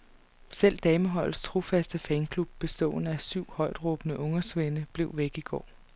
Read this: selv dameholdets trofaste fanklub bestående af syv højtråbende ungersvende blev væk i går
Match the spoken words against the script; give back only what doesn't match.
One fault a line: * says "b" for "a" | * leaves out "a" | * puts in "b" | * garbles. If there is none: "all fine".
all fine